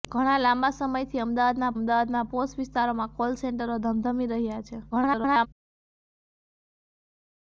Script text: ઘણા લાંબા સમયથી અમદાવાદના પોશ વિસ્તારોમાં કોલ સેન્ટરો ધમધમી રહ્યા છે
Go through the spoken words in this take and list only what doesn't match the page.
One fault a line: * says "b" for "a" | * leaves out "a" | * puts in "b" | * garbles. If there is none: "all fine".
* puts in "અમદાવાદના"
* garbles